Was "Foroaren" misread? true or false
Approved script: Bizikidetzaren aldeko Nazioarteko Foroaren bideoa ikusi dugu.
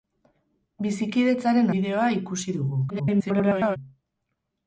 true